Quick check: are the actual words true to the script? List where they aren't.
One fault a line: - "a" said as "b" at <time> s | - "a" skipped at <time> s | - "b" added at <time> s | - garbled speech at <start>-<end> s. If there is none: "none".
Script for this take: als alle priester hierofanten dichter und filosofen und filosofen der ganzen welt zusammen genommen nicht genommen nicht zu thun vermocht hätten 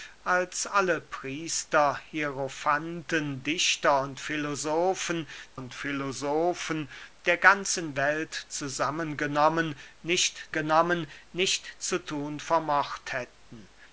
none